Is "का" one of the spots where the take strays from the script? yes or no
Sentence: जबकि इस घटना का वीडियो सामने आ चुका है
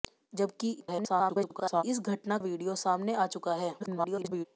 yes